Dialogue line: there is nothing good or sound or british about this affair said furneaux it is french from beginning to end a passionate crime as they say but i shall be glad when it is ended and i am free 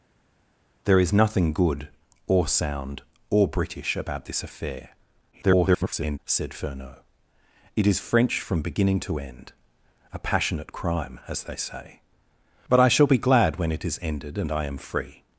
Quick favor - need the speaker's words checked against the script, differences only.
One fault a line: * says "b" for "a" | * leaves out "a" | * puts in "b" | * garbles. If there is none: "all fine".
* garbles